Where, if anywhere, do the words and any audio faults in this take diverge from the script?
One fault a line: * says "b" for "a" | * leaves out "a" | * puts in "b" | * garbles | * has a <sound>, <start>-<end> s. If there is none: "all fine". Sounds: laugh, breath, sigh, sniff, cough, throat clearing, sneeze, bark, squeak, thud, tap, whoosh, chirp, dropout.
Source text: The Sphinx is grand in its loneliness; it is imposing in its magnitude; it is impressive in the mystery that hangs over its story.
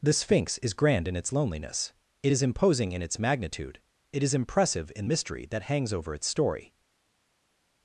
* leaves out "the"